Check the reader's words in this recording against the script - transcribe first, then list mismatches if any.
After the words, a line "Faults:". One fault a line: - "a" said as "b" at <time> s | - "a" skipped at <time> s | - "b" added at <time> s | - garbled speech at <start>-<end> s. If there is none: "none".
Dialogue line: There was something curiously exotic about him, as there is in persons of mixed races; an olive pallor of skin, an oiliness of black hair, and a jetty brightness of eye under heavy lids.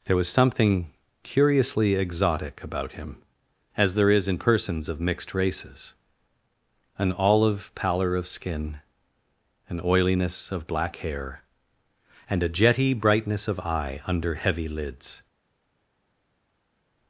There was something curiously exotic about him, as there is in persons of mixed races; an olive pallor of skin, an oiliness of black hair, and a jetty brightness of eye under heavy lids.
Faults:
none